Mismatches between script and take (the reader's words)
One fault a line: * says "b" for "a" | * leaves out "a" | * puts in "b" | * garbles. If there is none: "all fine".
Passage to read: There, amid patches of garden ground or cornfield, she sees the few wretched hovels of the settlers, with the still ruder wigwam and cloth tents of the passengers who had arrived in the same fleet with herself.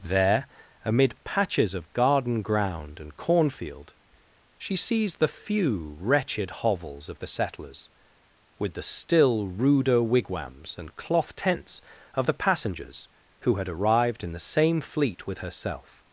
* says "and" for "or"
* says "wigwams" for "wigwam"